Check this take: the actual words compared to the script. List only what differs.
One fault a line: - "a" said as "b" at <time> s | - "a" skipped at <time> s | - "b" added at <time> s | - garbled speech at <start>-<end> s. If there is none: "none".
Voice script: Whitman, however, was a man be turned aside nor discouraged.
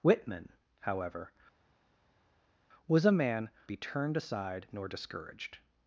none